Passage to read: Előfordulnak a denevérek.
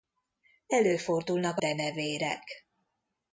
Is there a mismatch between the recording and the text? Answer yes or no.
no